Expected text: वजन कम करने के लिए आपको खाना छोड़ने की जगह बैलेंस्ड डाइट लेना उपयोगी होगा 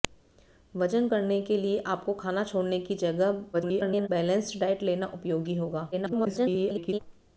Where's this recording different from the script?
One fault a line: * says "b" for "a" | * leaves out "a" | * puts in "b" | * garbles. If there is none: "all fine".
* leaves out "कम"
* garbles
* garbles